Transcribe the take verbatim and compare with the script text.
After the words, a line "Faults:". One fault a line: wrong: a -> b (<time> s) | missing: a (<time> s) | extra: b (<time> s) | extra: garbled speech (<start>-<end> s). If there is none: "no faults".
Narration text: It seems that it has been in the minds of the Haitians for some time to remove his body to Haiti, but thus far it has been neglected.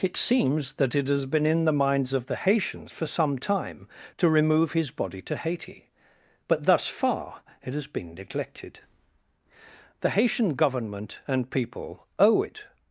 It seems that it has been in the minds of the Haitians for some time to remove his body to Haiti, but thus far it has been neglected. The Haitian Government and people owe it
Faults:
extra: The Haitian Government and people owe it (10.0 s)